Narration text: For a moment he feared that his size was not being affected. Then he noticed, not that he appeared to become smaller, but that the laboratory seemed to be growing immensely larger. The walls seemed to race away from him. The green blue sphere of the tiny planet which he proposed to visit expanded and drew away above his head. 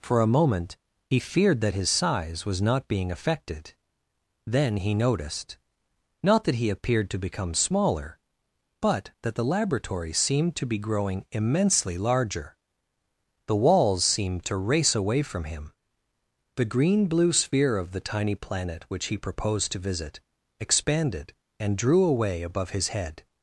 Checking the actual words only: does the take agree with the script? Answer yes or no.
yes